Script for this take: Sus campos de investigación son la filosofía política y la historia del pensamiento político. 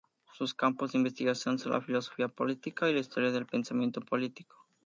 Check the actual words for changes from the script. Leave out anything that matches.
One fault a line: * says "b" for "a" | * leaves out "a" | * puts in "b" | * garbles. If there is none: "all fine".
all fine